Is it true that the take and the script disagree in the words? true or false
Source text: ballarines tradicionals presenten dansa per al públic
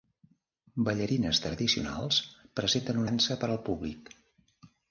false